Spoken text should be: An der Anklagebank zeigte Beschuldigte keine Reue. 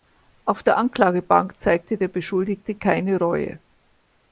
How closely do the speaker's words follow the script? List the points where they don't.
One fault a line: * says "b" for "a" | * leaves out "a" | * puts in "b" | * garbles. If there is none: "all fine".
* says "Auf" for "An"
* puts in "der"